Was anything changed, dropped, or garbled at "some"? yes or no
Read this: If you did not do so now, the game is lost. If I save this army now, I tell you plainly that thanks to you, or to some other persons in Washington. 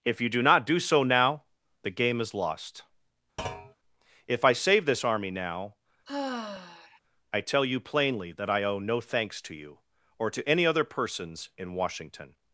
yes